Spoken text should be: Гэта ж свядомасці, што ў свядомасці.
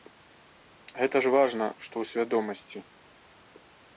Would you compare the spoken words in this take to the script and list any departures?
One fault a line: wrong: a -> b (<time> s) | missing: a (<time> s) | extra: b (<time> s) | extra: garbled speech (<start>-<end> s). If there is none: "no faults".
wrong: свядомасці -> важна (1.4 s)